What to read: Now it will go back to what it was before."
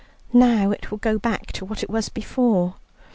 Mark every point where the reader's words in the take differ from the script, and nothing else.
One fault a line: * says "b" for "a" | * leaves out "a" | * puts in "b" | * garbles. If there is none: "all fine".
all fine